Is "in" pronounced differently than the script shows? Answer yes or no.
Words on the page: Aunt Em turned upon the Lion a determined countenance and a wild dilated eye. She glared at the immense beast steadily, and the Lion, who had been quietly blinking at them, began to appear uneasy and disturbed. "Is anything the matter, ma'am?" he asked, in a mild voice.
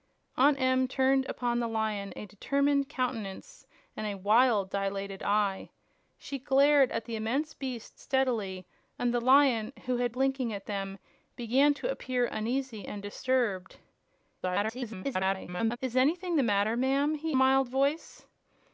yes